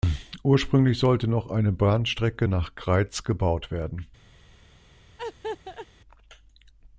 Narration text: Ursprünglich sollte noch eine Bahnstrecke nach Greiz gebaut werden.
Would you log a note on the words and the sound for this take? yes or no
yes